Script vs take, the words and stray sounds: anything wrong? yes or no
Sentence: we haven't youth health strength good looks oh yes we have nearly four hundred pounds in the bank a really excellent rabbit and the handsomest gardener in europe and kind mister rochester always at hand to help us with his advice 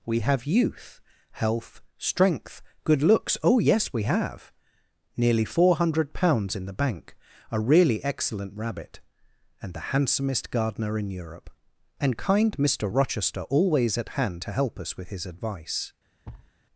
yes